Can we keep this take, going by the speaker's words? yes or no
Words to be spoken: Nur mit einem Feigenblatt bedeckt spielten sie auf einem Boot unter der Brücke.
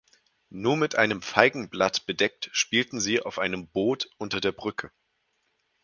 yes